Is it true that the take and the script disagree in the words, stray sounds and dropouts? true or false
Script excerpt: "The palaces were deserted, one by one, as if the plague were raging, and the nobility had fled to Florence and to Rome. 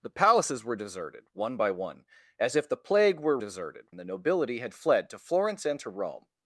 true